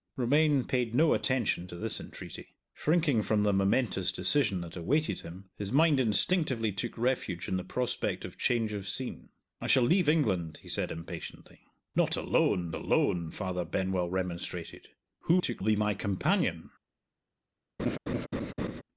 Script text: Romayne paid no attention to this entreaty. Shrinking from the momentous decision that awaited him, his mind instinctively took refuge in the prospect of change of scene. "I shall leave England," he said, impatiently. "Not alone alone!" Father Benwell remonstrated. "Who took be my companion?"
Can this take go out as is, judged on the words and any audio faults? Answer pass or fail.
fail